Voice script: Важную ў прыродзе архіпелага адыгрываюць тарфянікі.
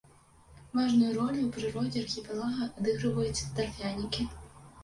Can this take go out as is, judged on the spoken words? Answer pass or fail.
fail